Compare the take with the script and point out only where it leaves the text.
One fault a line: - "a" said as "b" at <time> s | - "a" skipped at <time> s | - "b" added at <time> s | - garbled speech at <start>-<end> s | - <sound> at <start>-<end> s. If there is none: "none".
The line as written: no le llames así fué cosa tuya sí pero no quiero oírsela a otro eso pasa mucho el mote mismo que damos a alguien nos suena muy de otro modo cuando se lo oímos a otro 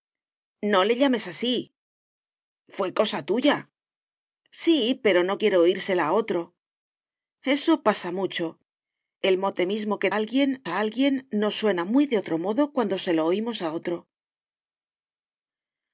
- "damos" said as "alguien" at 10.1 s